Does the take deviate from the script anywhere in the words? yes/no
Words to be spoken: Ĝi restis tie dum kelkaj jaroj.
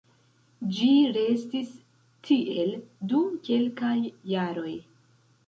yes